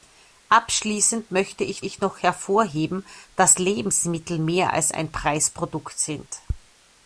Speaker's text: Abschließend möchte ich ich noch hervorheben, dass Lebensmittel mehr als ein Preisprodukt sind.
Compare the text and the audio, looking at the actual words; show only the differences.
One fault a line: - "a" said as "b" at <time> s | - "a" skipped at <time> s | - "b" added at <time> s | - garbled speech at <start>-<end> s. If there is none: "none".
none